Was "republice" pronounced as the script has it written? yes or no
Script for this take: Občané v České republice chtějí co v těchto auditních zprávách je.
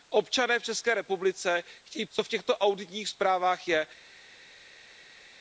yes